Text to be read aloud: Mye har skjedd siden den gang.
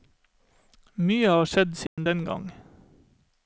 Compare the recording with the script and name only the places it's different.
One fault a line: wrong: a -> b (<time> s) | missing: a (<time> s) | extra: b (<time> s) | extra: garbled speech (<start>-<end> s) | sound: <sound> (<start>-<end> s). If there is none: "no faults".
sound: dropout (1.9-2.0 s)